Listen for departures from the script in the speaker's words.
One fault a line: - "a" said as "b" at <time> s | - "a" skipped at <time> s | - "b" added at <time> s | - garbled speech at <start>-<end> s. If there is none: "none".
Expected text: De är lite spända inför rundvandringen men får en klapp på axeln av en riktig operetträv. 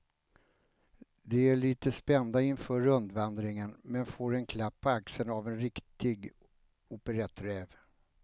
none